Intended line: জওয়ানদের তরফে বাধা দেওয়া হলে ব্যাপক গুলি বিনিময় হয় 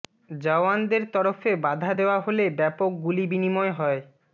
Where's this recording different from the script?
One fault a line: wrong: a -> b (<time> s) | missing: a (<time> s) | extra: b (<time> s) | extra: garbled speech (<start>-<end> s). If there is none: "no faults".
no faults